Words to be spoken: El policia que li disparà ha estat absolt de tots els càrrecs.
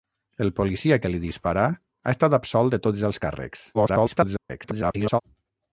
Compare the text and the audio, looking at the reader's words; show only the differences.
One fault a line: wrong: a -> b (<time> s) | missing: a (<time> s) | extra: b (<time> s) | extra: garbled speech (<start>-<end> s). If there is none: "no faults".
extra: garbled speech (3.7-5.2 s)